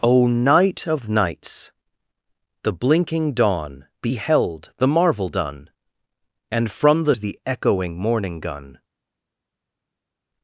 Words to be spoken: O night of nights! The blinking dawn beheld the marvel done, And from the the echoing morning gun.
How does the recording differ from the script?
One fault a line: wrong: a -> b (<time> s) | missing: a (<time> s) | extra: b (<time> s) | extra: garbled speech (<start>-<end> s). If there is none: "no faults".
no faults